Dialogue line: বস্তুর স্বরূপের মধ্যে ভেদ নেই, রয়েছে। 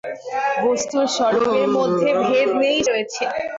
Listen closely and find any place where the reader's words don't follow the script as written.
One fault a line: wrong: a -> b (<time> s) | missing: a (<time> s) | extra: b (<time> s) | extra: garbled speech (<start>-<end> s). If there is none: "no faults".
no faults